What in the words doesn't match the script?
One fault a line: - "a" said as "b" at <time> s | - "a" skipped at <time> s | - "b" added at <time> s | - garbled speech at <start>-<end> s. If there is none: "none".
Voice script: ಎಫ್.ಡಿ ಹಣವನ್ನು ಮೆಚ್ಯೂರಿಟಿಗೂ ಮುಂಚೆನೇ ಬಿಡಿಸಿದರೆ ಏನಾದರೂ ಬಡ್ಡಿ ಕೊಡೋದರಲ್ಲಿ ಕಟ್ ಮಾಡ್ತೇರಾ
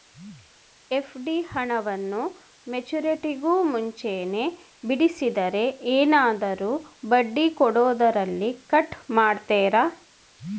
none